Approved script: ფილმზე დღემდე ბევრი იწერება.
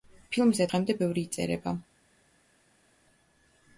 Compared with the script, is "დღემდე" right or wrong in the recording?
right